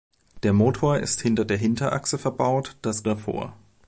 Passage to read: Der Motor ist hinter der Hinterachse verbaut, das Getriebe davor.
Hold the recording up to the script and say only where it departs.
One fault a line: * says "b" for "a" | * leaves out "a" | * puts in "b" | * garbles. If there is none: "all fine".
* leaves out "Getriebe"